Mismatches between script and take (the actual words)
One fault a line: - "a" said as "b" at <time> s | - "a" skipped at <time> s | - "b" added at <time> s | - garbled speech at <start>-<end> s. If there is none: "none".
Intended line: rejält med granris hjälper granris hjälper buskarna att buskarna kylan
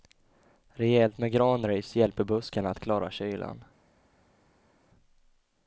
- "granris hjälper" skipped at 2.2 s
- "buskarna" said as "klara" at 2.8 s